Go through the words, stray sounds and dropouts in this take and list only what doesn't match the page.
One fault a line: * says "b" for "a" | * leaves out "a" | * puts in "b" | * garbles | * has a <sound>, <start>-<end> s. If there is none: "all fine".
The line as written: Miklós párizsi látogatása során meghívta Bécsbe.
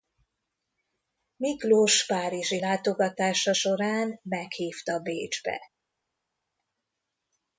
all fine